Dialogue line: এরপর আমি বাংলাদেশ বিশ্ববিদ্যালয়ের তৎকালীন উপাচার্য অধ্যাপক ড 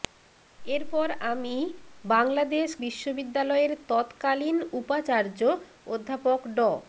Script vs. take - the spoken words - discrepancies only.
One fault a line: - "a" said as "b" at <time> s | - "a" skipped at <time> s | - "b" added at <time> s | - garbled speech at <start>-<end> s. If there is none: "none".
none